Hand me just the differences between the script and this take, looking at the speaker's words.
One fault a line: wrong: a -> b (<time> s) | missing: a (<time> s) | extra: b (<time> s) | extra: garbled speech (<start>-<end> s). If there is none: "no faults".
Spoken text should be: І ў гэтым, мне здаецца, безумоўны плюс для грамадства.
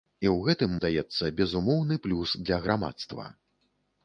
missing: мне (0.7 s)